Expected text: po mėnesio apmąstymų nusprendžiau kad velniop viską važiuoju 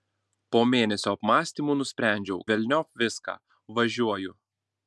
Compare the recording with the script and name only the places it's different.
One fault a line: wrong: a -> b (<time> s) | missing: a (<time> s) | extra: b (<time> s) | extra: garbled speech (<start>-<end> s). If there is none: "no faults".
missing: kad (2.4 s)